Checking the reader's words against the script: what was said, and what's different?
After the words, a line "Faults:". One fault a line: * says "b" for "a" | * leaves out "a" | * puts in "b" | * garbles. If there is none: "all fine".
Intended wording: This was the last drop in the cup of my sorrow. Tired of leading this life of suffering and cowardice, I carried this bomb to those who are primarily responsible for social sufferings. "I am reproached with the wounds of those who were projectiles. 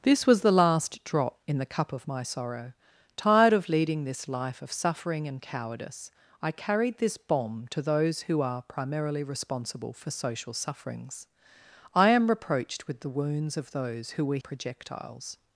This was the last drop in the cup of my sorrow. Tired of leading this life of suffering and cowardice, I carried this bomb to those who are primarily responsible for social sufferings. "I am reproached with the wounds of those who were projectiles.
Faults:
all fine